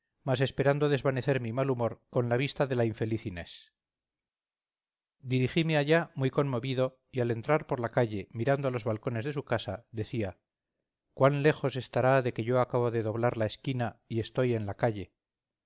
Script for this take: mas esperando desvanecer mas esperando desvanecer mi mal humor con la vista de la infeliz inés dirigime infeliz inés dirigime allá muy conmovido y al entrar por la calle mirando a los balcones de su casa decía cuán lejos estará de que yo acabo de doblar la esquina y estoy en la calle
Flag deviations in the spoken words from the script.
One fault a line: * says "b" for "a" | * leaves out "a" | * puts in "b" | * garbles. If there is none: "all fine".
* leaves out "mas esperando desvanecer"
* leaves out "infeliz inés dirigime"